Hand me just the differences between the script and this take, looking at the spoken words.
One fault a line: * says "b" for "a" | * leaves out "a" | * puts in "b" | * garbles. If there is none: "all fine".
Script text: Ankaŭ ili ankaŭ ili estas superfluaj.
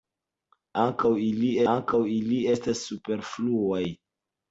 all fine